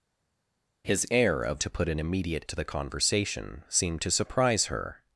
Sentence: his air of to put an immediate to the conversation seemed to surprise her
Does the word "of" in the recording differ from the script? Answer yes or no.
no